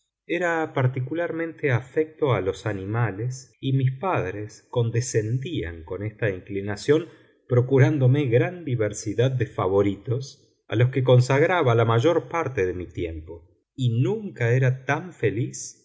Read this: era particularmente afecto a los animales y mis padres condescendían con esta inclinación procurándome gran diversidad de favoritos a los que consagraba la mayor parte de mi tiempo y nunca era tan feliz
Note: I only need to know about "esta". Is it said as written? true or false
true